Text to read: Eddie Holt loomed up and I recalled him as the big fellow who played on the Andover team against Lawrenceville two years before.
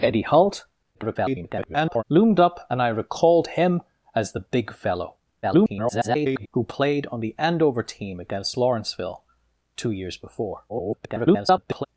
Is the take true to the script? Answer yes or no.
no